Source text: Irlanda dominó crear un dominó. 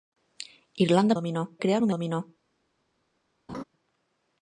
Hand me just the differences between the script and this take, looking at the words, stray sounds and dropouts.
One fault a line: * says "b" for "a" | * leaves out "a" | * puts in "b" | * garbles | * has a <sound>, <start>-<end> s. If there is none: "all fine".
* has a laugh, 3.5-3.6 s